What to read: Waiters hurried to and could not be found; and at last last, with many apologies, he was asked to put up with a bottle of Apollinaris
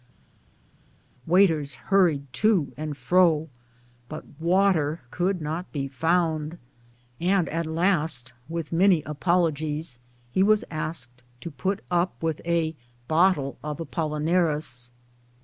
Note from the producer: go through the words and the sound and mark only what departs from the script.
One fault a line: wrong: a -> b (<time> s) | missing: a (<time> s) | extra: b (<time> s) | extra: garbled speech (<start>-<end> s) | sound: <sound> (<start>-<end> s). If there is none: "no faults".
extra: fro but water (3.0 s)
missing: last (8.3 s)